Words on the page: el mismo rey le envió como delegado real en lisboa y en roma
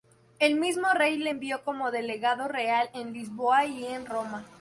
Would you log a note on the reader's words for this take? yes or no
no